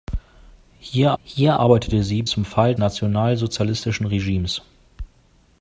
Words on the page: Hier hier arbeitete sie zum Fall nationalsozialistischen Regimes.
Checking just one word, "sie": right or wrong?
right